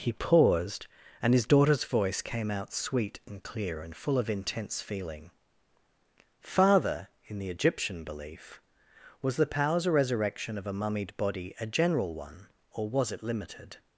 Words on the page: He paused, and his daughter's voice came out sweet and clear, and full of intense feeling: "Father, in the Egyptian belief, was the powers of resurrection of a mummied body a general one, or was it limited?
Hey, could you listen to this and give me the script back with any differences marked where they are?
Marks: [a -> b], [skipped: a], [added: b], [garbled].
He paused, and his daughter's voice came out sweet and clear, and full of intense feeling: "Father, in the Egyptian belief, was the powers of resurrection of a mummied body a general one, or was it limited?